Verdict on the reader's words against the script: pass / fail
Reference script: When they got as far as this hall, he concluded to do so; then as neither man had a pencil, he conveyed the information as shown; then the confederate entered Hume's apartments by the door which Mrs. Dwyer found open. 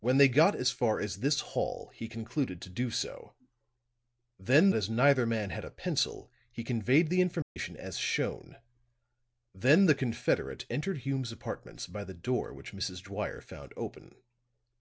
pass